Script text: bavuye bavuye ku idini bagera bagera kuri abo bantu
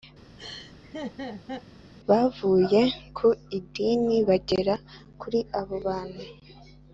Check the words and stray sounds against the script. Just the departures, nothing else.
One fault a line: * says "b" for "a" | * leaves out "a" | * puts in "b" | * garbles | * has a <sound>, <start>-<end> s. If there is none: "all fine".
* has a laugh, 0.4-1.7 s
* leaves out "bavuye"
* leaves out "bagera"